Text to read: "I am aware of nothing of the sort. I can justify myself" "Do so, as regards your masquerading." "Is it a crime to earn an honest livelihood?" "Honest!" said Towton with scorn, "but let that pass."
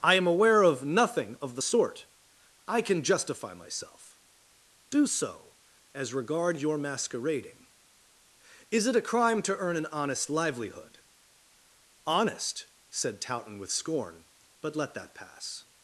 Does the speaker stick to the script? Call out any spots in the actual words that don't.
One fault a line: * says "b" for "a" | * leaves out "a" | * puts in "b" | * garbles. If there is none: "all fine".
* says "regard" for "regards"